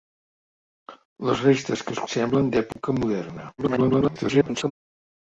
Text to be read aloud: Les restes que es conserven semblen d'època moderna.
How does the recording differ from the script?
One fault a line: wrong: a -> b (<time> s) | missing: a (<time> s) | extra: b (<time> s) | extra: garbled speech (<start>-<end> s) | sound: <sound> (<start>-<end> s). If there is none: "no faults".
missing: conserven (2.0 s)
sound: dropout (2.7-2.8 s)
extra: garbled speech (3.6-4.7 s)